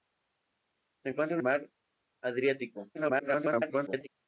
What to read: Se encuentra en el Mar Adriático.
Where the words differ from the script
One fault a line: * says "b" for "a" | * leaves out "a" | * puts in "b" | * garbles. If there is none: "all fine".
* leaves out "el"
* garbles